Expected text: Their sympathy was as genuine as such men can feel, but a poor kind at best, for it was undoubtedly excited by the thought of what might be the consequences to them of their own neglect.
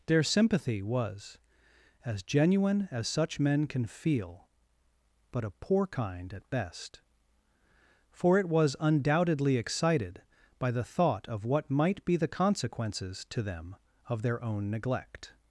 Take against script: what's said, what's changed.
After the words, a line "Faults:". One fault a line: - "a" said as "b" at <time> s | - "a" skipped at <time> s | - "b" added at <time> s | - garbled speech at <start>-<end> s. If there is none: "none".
Their sympathy was as genuine as such men can feel, but a poor kind at best, for it was undoubtedly excited by the thought of what might be the consequences to them of their own neglect.
Faults:
none